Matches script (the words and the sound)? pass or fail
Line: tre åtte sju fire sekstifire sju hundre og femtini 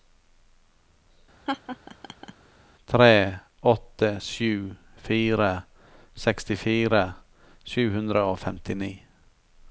fail